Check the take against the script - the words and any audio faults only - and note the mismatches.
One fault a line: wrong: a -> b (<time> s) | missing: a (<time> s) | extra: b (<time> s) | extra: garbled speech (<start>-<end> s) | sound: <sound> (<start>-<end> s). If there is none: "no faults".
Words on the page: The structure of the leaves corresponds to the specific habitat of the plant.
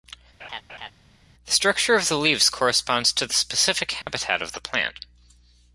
sound: laugh (0.4-0.9 s)
sound: dropout (4.0-4.1 s)